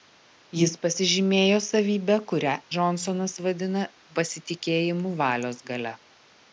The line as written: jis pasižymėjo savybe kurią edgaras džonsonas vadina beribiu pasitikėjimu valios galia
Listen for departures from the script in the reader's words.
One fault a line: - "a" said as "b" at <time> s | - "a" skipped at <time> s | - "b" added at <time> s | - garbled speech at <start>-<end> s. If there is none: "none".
- "edgaras" skipped at 2.5 s
- "beribiu" skipped at 3.8 s